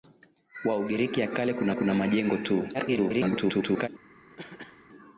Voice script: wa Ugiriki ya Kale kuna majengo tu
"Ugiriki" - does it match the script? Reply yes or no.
yes